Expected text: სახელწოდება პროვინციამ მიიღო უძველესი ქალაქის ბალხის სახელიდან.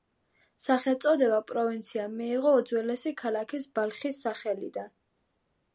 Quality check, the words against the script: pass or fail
pass